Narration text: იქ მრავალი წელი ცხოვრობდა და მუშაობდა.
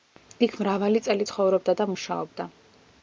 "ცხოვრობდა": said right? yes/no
yes